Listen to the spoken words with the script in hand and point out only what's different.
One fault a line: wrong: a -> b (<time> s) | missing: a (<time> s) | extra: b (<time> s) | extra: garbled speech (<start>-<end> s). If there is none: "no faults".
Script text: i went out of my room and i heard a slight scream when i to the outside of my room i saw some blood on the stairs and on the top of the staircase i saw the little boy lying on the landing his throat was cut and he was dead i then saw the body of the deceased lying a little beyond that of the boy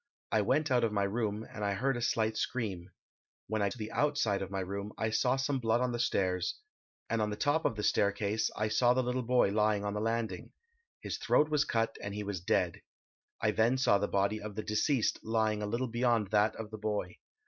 no faults